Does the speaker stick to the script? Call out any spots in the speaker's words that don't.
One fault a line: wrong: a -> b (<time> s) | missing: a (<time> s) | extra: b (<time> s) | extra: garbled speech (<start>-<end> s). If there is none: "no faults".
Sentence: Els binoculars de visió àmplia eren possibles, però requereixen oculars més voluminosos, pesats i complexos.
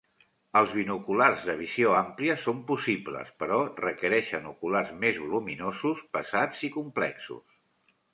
wrong: eren -> són (2.4 s)